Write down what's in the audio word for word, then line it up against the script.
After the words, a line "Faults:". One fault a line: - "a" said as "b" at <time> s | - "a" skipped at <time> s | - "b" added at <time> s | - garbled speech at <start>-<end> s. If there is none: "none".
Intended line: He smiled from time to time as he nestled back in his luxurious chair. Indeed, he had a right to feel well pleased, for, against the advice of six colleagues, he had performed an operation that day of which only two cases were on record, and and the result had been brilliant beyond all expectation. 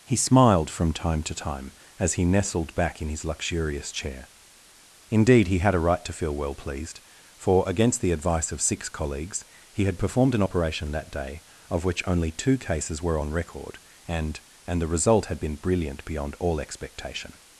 He smiled from time to time as he nestled back in his luxurious chair. Indeed, he had a right to feel well pleased, for, against the advice of six colleagues, he had performed an operation that day of which only two cases were on record, and and the result had been brilliant beyond all expectation.
Faults:
none